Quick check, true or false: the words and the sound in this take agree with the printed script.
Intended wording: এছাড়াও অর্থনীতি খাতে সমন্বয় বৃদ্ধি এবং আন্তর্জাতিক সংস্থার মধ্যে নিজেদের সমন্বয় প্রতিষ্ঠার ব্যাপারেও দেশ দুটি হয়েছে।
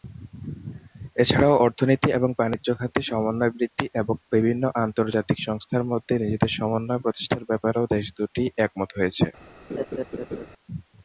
false